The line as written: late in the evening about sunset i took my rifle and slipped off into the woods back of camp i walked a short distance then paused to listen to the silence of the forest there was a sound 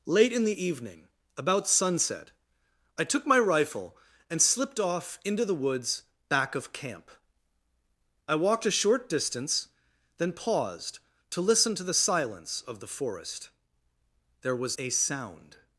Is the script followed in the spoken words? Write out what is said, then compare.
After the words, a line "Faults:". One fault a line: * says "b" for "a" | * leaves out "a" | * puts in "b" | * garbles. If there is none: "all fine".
late in the evening about sunset i took my rifle and slipped off into the woods back of camp i walked a short distance then paused to listen to the silence of the forest there was a sound
Faults:
all fine